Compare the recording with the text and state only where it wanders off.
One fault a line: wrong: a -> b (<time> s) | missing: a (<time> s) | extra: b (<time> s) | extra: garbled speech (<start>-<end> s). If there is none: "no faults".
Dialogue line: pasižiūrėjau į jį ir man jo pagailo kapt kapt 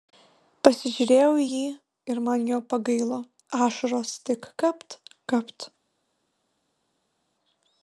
extra: ašaros tik (3.7 s)